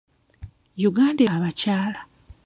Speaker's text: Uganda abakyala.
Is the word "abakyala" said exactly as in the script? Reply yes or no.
yes